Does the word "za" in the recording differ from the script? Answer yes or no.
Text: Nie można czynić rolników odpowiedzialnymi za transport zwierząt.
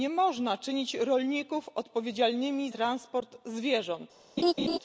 yes